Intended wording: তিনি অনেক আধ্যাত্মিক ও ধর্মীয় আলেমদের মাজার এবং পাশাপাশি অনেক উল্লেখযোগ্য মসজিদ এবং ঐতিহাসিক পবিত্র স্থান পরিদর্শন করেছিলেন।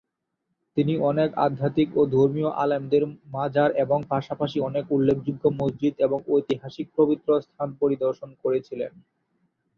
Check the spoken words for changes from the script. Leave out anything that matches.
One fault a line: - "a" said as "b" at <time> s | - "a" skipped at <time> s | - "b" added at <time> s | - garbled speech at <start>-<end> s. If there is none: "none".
none